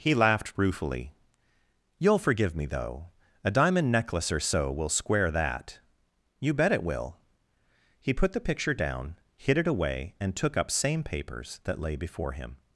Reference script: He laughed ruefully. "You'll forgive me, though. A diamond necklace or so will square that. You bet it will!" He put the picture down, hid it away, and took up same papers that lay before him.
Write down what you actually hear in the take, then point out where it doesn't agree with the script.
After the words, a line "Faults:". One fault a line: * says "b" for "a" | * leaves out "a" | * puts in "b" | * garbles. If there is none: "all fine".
He laughed ruefully. "You'll forgive me, though. A diamond necklace or so will square that. You bet it will!" He put the picture down, hid it away, and took up same papers that lay before him.
Faults:
all fine